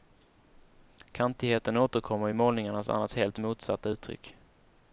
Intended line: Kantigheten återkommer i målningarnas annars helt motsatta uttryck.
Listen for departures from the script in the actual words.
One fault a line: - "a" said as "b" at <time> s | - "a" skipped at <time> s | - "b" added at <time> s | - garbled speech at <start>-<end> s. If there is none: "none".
none